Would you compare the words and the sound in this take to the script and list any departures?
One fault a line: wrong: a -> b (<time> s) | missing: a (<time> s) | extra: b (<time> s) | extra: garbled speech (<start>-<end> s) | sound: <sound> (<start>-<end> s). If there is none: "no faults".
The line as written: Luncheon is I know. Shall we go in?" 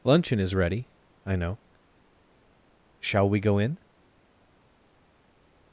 extra: ready (0.6 s)